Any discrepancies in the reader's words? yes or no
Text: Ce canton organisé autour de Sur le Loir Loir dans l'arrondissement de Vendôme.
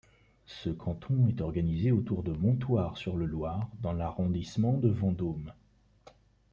yes